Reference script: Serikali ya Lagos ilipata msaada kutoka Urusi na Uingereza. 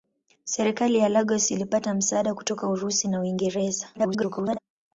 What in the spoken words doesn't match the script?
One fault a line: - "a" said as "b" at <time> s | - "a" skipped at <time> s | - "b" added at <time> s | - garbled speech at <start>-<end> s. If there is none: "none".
- garbled speech at 3.9-4.6 s